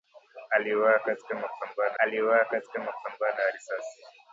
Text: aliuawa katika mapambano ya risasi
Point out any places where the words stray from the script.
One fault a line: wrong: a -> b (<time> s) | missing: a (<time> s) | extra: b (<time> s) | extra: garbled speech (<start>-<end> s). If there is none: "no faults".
extra: aliuawa katika mapambano (2.0 s)